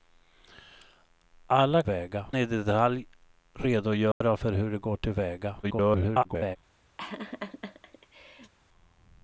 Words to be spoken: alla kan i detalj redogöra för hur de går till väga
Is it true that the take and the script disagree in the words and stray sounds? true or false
true